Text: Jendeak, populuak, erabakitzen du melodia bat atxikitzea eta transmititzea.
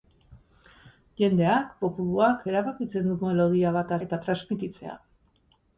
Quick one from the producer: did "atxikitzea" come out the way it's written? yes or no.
no